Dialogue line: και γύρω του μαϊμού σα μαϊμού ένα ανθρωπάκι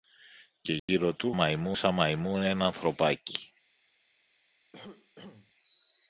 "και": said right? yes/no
yes